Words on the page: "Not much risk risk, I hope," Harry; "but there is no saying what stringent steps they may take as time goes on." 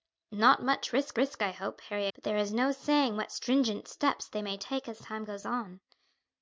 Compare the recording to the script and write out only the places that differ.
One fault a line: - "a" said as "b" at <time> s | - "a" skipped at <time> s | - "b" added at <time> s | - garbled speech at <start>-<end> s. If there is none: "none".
none